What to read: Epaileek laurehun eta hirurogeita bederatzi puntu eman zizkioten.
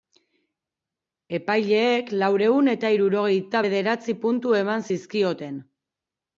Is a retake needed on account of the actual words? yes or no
no